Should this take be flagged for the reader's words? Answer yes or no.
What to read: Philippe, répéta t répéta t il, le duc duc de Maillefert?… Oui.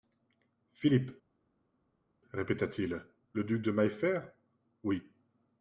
yes